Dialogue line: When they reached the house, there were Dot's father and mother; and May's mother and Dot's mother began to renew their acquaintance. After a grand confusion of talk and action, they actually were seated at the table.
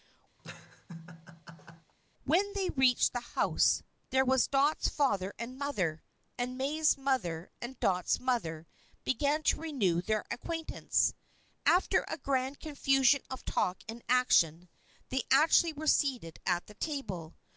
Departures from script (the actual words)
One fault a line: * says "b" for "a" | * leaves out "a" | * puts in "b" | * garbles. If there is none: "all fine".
all fine